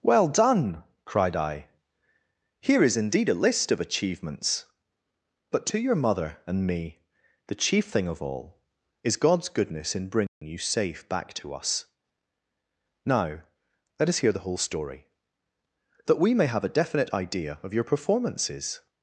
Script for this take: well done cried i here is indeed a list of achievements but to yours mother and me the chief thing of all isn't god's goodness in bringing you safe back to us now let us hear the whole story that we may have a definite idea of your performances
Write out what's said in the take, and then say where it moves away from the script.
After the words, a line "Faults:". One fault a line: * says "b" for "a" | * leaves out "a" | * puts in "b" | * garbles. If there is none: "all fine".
well done cried i here is indeed a list of achievements but to your mother and me the chief thing of all is god's goodness in bringing you safe back to us now let us hear the whole story that we may have a definite idea of your performances
Faults:
* says "your" for "yours"
* says "is" for "isn't"